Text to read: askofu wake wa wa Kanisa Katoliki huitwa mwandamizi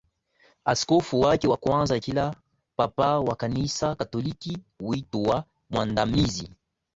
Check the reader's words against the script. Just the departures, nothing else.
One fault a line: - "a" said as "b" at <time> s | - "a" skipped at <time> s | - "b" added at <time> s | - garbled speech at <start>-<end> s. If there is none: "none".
- "kwanza Kila Papa" added at 1.6 s